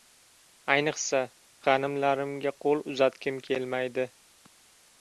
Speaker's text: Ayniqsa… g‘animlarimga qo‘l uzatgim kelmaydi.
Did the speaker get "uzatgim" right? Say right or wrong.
right